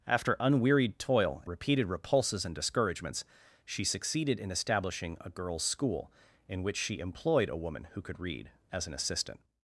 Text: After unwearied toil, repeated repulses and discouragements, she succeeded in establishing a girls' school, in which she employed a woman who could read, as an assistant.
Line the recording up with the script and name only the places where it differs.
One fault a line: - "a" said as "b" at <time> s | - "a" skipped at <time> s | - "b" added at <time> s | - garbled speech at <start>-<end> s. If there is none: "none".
none